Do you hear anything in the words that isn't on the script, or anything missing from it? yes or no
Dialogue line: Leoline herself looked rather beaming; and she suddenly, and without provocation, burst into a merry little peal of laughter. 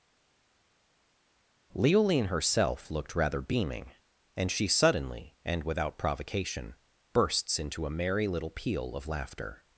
yes